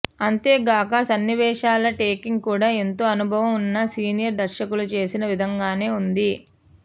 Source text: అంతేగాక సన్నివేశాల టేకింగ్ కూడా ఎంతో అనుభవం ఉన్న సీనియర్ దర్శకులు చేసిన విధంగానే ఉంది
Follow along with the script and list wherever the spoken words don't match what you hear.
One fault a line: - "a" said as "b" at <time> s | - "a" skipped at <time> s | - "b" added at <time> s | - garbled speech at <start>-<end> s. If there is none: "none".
none